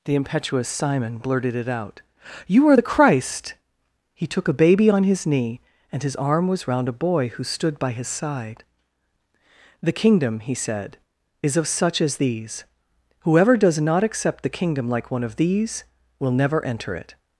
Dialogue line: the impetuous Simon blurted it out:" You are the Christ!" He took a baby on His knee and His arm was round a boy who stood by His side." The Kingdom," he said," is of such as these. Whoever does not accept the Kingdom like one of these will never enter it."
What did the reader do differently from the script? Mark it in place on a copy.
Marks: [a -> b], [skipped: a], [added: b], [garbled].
the impetuous Simon blurted it out:" You are the Christ!" He took a baby on His knee and His arm was round a boy who stood by His side." The Kingdom," he said," is of such as these. Whoever does not accept the Kingdom like one of these will never enter it."